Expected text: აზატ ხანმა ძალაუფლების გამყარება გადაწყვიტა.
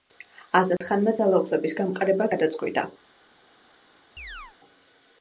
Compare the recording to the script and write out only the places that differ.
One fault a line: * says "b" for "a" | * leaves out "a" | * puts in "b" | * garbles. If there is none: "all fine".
all fine